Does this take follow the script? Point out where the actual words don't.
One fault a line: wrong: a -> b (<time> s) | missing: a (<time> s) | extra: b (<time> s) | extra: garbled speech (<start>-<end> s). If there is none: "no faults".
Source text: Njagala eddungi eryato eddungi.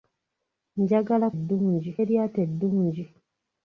no faults